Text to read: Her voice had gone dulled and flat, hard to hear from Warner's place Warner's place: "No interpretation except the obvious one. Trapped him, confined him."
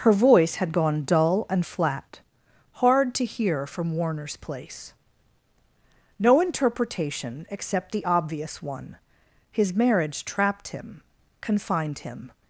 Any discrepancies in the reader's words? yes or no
yes